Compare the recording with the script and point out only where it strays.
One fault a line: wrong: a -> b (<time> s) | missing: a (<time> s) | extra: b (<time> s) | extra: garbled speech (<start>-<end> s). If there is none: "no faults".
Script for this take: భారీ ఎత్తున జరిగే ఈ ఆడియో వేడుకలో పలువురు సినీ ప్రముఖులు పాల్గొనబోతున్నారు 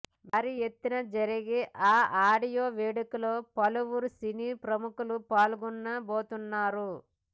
no faults